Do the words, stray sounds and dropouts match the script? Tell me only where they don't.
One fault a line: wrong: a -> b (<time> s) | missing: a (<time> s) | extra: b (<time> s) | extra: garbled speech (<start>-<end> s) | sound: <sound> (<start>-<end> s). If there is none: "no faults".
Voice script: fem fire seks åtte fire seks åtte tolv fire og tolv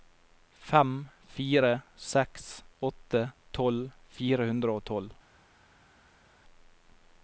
missing: fire seks åtte (3.2 s)
extra: hundre (4.5 s)